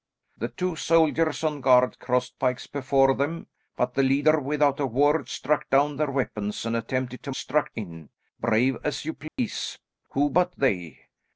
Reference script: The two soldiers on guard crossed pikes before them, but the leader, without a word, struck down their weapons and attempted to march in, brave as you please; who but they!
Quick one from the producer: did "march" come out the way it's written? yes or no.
no